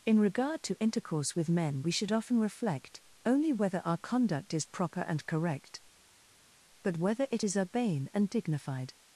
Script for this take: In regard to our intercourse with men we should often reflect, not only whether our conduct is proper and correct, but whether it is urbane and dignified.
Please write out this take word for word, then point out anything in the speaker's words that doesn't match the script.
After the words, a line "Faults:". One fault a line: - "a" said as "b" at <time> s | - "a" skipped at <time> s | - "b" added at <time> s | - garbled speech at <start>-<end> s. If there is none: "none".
In regard to intercourse with men we should often reflect, only whether our conduct is proper and correct, but whether it is urbane and dignified.
Faults:
- "our" skipped at 0.8 s
- "not" skipped at 3.0 s